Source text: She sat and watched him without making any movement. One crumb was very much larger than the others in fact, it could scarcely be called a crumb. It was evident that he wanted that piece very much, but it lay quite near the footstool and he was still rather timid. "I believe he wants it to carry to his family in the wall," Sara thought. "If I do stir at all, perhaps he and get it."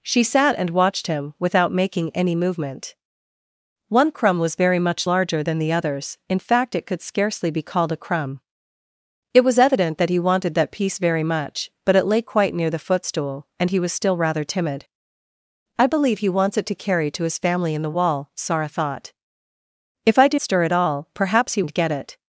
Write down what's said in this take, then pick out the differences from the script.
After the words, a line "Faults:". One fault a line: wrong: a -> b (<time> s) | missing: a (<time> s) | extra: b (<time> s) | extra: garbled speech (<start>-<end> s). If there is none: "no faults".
She sat and watched him without making any movement. One crumb was very much larger than the others in fact, it could scarcely be called a crumb. It was evident that he wanted that piece very much, but it lay quite near the footstool and he was still rather timid. "I believe he wants it to carry to his family in the wall," Sara thought. "If I do stir at all, perhaps he and get it."
Faults:
no faults